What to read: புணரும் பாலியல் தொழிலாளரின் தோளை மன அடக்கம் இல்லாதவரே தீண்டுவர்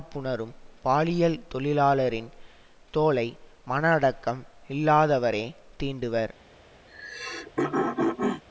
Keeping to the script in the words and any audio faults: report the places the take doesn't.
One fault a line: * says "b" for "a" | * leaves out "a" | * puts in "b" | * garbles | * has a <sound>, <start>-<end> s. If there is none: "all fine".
* has a throat clearing, 6.9-8.4 s